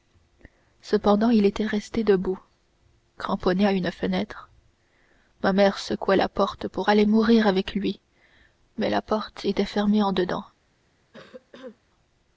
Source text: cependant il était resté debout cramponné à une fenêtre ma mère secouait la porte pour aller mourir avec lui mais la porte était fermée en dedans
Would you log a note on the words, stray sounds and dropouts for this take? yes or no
yes